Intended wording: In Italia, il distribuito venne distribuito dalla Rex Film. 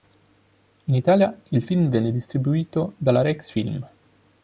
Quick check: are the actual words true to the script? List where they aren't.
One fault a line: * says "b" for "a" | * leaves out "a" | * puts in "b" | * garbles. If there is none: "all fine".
* says "film" for "distribuito"